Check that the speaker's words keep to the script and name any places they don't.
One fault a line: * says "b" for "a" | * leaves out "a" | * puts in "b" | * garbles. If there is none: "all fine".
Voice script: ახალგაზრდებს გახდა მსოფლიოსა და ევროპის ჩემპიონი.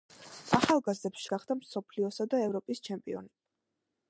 all fine